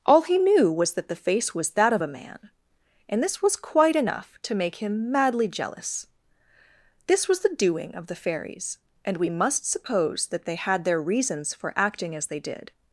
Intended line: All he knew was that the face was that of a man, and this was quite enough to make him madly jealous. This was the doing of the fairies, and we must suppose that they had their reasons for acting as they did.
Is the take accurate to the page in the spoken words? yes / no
yes